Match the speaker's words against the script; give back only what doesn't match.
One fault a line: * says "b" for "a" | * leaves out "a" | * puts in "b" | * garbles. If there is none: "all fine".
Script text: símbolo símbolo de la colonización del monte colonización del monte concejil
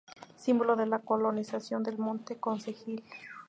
* leaves out "símbolo"
* leaves out "colonización del monte"